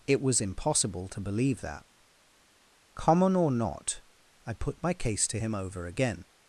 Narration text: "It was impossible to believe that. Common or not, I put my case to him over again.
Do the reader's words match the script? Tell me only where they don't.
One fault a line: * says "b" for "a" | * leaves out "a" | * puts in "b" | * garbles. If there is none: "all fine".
all fine